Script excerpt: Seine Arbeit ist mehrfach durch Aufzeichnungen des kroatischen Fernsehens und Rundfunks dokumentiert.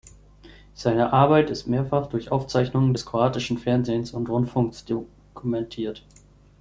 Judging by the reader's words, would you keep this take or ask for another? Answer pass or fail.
pass